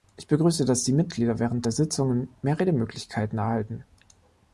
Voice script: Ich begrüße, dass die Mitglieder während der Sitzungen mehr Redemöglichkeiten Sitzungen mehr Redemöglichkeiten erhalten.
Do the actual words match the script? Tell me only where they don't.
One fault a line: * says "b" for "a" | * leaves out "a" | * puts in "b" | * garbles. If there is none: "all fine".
* leaves out "Sitzungen mehr Redemöglichkeiten"